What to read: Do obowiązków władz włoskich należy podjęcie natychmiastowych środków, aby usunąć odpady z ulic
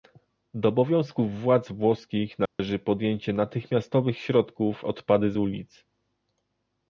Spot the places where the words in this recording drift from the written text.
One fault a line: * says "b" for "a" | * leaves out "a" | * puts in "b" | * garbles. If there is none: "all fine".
* leaves out "aby usunąć"